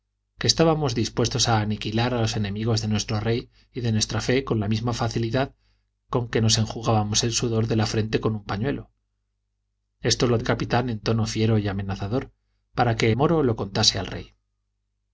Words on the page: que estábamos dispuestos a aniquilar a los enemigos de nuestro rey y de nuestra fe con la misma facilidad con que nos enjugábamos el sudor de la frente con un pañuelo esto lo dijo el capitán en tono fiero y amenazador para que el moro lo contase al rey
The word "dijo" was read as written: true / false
false